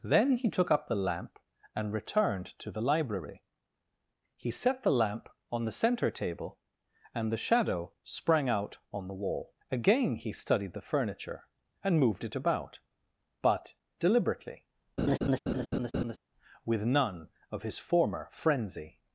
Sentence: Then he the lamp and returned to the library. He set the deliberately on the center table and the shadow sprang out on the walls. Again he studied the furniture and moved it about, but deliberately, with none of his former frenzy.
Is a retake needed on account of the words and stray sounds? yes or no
yes